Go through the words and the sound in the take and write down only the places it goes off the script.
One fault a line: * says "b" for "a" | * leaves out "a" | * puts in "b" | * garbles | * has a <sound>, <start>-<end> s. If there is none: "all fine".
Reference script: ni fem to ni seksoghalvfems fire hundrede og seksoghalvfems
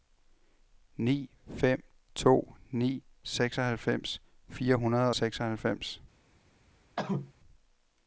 * has a cough, 7.0-7.3 s